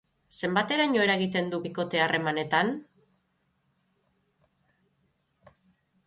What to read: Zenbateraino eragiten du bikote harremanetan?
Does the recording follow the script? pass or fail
pass